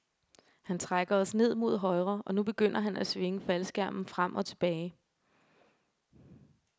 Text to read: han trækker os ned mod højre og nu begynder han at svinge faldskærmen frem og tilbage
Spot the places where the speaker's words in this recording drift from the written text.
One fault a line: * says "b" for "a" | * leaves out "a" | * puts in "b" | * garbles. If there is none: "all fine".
all fine